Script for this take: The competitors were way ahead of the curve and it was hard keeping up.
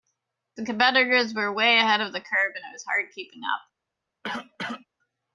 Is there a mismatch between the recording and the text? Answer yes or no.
no